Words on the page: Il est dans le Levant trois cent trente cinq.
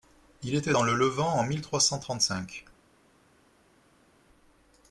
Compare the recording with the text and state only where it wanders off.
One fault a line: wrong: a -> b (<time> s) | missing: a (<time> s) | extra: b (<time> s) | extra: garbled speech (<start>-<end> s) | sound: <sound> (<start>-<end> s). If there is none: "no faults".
wrong: est -> était (0.6 s)
extra: en mille (1.3 s)